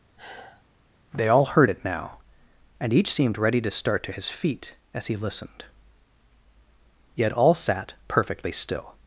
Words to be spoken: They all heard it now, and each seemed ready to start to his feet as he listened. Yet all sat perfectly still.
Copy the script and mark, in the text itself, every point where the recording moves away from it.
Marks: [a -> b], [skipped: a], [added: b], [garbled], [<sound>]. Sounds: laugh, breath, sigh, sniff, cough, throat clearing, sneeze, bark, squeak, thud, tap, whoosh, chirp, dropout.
[sigh] They all heard it now, and each seemed ready to start to his feet as he listened. Yet all sat perfectly still.